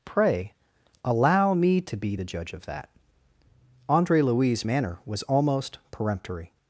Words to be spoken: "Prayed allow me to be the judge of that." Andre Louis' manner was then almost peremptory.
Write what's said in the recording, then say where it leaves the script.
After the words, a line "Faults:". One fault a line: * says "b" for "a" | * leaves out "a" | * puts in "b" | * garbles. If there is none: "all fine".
"Pray allow me to be the judge of that." Andre Louis' manner was almost peremptory.
Faults:
* says "Pray" for "Prayed"
* leaves out "then"